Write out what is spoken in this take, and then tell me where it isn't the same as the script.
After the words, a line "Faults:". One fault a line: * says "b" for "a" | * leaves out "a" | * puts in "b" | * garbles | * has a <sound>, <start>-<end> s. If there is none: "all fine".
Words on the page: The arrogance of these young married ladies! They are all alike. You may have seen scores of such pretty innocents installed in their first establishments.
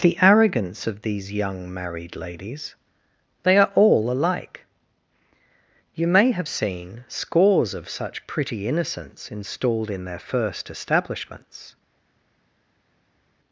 The arrogance of these young married ladies! They are all alike. You may have seen scores of such pretty innocents installed in their first establishments.
Faults:
all fine